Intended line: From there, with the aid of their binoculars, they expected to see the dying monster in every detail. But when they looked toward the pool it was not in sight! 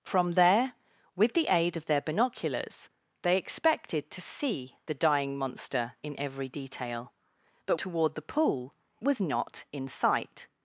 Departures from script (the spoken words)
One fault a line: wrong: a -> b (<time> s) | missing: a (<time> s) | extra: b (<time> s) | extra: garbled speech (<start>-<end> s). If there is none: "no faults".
missing: when they looked (7.8 s)
missing: it (8.7 s)